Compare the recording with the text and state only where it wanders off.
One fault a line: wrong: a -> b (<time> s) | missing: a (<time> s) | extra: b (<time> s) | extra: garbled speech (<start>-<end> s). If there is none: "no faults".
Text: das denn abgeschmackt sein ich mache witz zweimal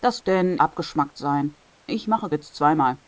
no faults